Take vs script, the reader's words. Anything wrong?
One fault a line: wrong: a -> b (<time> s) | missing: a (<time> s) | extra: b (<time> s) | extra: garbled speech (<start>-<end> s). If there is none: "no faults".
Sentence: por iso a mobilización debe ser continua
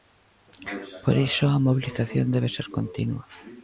no faults